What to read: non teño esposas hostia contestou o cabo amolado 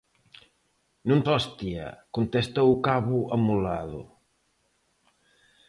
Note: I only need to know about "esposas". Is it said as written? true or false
false